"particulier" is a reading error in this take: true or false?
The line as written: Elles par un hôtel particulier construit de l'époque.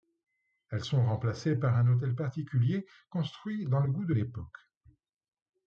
false